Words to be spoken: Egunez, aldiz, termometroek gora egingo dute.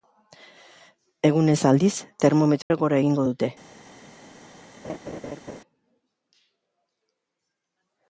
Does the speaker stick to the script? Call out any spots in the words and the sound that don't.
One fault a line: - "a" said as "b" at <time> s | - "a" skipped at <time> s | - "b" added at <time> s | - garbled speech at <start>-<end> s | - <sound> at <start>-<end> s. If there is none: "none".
- dropout at 2.6-2.7 s
- laugh at 4.8-5.6 s